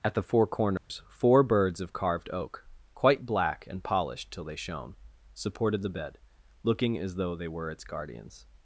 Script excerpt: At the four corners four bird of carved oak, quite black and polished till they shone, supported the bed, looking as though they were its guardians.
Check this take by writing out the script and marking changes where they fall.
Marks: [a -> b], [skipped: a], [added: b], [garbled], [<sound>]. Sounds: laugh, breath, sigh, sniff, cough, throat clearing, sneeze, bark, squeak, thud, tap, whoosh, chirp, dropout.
At the four corners [dropout] four [bird -> birds] of carved oak, quite black and polished till they shone, supported the bed, looking as though they were its guardians.